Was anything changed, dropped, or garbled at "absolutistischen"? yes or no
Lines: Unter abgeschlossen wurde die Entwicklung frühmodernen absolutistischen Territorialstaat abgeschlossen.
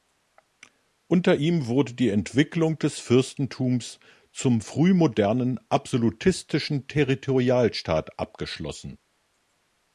no